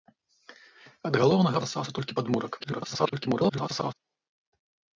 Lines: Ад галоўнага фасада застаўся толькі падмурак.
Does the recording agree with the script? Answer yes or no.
no